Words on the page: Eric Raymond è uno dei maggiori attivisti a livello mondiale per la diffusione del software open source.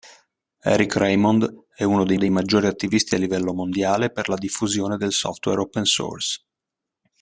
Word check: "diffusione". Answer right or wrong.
right